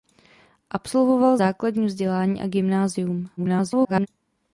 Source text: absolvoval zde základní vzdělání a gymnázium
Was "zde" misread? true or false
true